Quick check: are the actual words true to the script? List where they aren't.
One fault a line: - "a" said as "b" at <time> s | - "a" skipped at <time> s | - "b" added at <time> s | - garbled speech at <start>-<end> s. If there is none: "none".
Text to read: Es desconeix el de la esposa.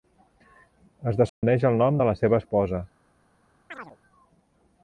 - "nom" added at 1.8 s
- "seva" added at 2.2 s